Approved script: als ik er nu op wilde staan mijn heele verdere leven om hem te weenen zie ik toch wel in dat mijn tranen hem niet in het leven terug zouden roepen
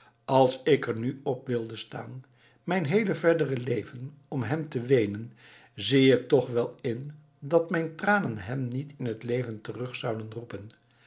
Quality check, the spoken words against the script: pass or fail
pass